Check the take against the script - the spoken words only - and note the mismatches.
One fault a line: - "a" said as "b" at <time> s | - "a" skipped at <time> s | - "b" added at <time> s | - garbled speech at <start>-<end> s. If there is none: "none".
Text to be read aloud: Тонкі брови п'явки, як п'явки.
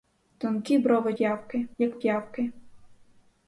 none